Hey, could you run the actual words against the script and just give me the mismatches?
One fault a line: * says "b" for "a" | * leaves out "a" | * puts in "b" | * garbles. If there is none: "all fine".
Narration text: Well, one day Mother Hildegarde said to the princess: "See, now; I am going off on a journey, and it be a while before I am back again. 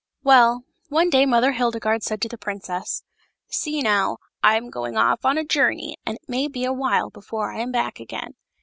* puts in "may"